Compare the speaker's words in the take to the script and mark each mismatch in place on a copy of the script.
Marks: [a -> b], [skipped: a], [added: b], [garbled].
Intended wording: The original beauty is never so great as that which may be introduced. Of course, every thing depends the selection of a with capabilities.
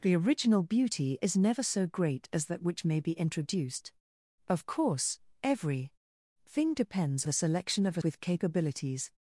The original beauty is never so great as that which may be introduced. Of course, every thing depends the selection of a with capabilities.